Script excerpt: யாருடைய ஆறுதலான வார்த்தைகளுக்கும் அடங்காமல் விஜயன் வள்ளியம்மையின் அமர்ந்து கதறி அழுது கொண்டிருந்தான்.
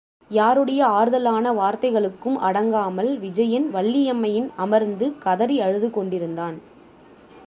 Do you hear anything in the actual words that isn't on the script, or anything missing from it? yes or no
no